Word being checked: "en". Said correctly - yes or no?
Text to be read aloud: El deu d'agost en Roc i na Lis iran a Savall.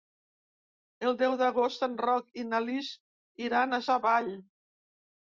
yes